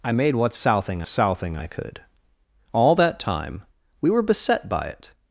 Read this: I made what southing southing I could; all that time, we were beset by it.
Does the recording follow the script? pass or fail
pass